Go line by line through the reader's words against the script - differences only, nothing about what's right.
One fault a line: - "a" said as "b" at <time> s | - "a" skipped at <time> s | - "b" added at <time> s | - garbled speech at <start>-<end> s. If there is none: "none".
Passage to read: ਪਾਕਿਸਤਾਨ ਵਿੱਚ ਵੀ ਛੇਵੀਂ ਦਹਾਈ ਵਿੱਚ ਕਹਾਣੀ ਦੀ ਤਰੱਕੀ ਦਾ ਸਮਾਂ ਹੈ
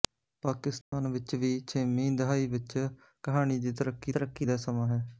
- "ਤਰੱਕੀ" added at 4.1 s